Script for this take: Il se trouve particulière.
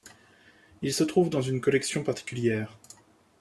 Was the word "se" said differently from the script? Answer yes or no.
no